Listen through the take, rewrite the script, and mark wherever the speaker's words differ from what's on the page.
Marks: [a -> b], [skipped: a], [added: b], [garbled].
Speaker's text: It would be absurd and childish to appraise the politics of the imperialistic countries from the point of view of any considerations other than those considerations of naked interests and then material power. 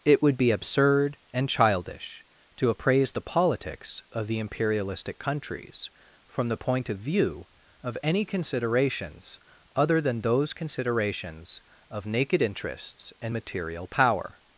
It would be absurd and childish to appraise the politics of the imperialistic countries from the point of view of any considerations other than those considerations of naked interests and [skipped: then] material power.